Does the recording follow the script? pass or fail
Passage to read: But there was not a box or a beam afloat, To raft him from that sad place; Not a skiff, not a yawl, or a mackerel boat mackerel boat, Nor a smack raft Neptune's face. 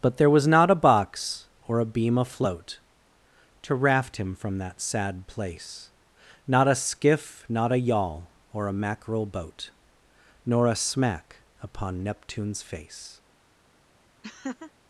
fail